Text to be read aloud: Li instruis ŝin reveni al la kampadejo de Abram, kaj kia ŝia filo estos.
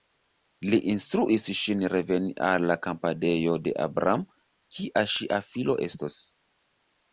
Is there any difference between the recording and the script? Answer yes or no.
yes